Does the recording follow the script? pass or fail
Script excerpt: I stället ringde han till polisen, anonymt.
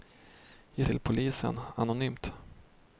fail